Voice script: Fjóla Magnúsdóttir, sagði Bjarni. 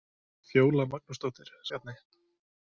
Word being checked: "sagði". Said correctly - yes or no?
no